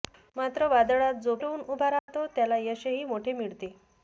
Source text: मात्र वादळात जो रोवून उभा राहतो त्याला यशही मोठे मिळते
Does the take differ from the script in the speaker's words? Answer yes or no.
no